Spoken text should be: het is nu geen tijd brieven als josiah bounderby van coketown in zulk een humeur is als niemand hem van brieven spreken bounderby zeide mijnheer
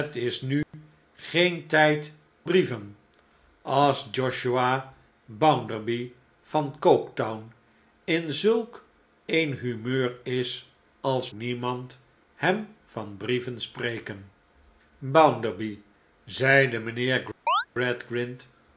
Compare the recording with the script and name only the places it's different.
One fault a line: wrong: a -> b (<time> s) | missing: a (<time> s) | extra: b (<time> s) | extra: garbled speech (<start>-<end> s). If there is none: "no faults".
no faults